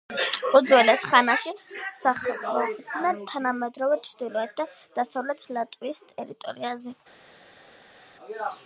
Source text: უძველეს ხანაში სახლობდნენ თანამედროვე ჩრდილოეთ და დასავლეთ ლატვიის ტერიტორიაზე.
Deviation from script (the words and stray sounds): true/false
false